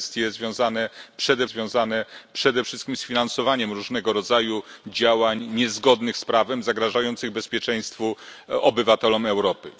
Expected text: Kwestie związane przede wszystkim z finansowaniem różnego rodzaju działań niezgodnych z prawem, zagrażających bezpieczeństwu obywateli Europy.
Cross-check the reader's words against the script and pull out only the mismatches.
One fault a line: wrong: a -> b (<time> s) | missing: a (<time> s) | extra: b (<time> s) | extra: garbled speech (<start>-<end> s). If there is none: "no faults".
extra: związane przede (1.5 s)